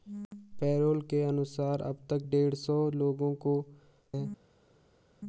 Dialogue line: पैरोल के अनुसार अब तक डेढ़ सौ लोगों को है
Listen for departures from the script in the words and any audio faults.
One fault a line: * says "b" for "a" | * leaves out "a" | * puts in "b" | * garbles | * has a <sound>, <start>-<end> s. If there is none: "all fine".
all fine